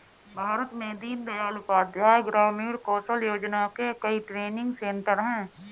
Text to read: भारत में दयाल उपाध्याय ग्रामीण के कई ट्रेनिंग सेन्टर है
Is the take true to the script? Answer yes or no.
no